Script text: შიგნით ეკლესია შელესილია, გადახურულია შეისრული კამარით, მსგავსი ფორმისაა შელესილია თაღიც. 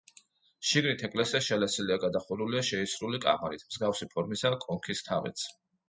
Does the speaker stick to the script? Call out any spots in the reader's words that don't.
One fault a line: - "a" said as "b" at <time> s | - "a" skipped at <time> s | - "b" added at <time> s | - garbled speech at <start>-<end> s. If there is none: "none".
- "შელესილია" said as "კონქის" at 4.7 s